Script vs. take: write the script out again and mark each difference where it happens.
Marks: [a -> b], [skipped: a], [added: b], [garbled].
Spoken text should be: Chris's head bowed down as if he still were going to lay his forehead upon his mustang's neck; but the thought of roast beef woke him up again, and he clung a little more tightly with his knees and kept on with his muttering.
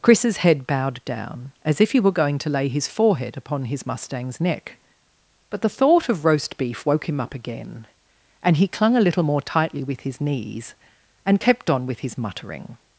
Chris's head bowed down as if he [skipped: still] were going to lay his forehead upon his mustang's neck; but the thought of roast beef woke him up again, and he clung a little more tightly with his knees and kept on with his muttering.